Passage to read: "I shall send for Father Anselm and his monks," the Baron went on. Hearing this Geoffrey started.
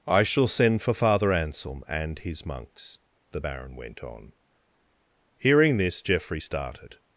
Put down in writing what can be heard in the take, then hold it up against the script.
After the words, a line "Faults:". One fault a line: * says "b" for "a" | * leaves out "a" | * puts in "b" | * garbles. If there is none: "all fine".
"I shall send for Father Anselm and his monks," the Baron went on. Hearing this Geoffrey started.
Faults:
all fine